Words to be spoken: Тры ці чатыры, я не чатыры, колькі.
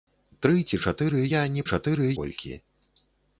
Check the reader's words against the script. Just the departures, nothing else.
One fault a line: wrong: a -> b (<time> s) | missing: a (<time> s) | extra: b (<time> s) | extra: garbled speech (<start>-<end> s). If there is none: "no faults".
no faults